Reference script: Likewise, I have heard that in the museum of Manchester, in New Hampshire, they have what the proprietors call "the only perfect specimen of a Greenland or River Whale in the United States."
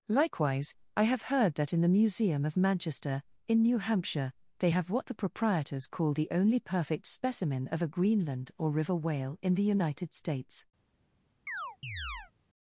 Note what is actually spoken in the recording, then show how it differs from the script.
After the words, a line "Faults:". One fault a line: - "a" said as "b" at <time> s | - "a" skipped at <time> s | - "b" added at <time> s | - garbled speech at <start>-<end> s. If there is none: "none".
Likewise, I have heard that in the museum of Manchester, in New Hampshire, they have what the proprietors call "the only perfect specimen of a Greenland or River Whale in the United States."
Faults:
none